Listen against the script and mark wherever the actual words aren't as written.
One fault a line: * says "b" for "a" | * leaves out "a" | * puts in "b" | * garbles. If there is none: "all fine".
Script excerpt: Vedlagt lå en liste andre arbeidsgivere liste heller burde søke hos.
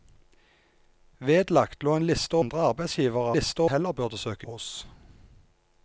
all fine